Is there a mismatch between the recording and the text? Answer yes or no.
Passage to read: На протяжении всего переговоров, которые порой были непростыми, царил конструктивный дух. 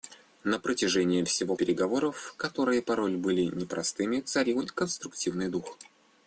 no